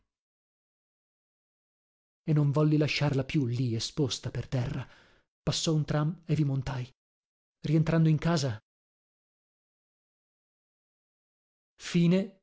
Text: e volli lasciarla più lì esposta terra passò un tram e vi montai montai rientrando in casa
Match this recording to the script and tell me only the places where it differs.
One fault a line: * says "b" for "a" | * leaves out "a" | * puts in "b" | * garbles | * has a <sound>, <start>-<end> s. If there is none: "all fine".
* puts in "non"
* puts in "per"
* leaves out "montai"